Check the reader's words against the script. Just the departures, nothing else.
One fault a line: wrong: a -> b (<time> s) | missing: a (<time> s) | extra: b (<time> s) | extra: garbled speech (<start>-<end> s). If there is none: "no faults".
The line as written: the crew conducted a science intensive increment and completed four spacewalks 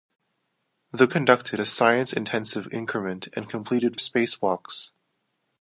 missing: crew (1.1 s)
missing: four (3.9 s)